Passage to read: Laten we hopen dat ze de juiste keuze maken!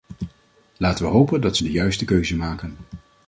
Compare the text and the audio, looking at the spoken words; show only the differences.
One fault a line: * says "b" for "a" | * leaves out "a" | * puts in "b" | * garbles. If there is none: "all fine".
all fine